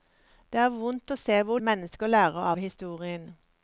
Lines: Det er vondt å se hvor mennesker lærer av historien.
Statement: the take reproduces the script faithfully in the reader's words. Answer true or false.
true